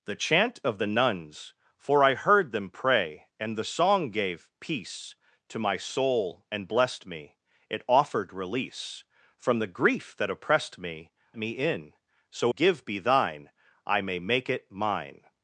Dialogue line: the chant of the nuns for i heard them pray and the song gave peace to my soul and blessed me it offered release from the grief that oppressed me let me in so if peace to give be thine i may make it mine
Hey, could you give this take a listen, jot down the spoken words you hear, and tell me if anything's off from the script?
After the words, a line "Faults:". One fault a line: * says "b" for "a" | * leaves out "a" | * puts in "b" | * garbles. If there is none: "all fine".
the chant of the nuns for i heard them pray and the song gave peace to my soul and blessed me it offered release from the grief that oppressed me me in so give be thine i may make it mine
Faults:
* leaves out "let"
* leaves out "if peace to"